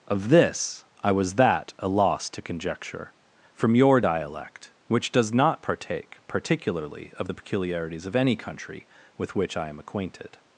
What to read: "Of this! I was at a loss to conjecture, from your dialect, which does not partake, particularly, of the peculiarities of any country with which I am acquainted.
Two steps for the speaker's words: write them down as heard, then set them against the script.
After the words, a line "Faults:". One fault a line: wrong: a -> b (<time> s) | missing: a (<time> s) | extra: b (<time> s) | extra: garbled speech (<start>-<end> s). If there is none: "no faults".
"Of this! I was that a loss to conjecture, from your dialect, which does not partake, particularly, of the peculiarities of any country with which I am acquainted.
Faults:
wrong: at -> that (1.4 s)